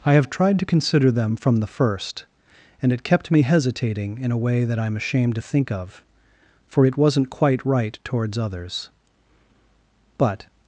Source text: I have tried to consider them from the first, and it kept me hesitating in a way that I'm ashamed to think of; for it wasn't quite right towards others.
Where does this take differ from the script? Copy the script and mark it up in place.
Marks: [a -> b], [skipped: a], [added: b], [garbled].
I have tried to consider them from the first, and it kept me hesitating in a way that I'm ashamed to think of; for it wasn't quite right towards others. [added: But]